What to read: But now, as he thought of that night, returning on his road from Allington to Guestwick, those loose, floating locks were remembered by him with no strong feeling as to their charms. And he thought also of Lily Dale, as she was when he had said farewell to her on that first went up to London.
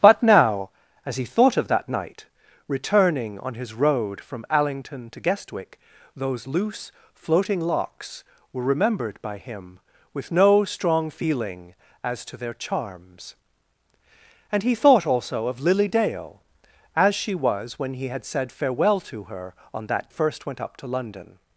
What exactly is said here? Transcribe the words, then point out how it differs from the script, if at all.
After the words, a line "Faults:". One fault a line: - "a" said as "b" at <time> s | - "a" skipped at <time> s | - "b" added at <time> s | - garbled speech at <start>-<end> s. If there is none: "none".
But now, as he thought of that night, returning on his road from Allington to Guestwick, those loose, floating locks were remembered by him with no strong feeling as to their charms. And he thought also of Lily Dale, as she was when he had said farewell to her on that first went up to London.
Faults:
none